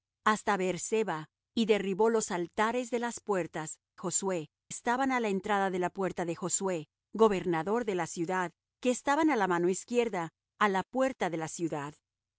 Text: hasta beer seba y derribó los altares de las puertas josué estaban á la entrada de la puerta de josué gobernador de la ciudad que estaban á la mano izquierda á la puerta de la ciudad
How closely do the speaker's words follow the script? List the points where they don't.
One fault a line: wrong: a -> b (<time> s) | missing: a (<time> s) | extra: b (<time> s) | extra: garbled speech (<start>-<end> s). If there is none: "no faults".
no faults